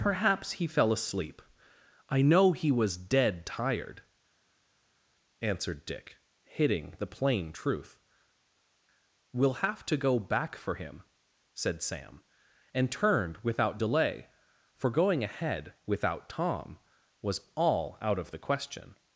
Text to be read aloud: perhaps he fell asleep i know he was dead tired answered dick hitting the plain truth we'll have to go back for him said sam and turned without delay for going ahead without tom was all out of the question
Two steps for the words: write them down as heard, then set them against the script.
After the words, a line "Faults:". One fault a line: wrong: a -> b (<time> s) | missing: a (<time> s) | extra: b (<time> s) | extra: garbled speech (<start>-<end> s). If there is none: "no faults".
perhaps he fell asleep i know he was dead tired answered dick hitting the plain truth we'll have to go back for him said sam and turned without delay for going ahead without tom was all out of the question
Faults:
no faults